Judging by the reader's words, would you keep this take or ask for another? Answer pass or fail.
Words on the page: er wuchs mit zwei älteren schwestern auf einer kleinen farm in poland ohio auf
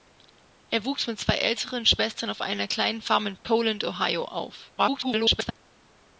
fail